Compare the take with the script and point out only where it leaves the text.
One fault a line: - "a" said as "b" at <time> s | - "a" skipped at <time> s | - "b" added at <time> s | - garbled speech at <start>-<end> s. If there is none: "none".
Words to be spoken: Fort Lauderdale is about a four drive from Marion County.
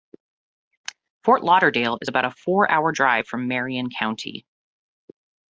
- "hour" added at 2.7 s